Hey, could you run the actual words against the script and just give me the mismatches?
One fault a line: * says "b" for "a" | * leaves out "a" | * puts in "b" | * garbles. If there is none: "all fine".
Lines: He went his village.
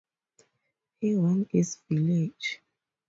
all fine